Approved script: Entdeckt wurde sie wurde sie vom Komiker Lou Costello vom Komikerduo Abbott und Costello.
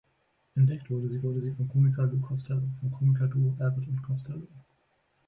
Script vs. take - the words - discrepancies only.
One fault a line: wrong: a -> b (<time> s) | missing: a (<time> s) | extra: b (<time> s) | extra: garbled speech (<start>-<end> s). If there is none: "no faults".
no faults